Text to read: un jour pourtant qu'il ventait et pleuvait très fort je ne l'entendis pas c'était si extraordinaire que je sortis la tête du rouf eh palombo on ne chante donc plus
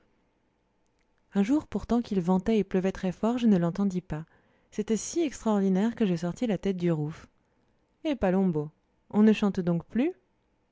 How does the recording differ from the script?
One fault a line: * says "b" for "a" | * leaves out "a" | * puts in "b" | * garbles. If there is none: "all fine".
all fine